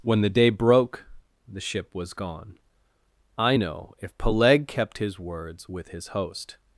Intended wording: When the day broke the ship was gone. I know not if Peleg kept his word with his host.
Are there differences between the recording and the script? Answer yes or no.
yes